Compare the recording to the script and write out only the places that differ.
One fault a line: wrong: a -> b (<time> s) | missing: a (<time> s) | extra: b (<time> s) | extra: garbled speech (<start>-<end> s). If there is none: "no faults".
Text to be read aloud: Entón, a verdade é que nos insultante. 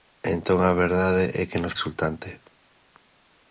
no faults